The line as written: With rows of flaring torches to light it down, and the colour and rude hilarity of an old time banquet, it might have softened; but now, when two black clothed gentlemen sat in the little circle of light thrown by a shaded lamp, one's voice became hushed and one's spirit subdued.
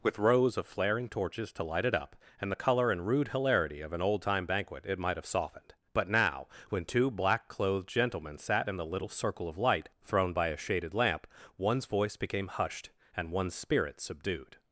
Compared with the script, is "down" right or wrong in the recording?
wrong